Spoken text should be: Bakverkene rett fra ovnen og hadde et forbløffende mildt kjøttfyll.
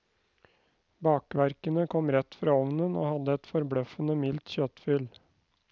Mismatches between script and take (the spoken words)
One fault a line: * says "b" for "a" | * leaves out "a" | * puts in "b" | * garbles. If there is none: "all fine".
* puts in "kom"